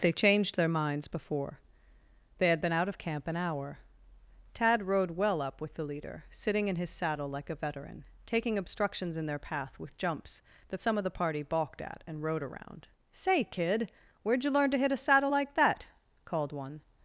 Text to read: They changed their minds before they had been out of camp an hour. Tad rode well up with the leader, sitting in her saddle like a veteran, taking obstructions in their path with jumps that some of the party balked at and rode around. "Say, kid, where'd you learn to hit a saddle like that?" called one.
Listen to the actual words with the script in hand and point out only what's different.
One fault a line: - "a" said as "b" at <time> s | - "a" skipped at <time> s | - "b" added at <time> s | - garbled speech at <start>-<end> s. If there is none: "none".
- "her" said as "his" at 6.8 s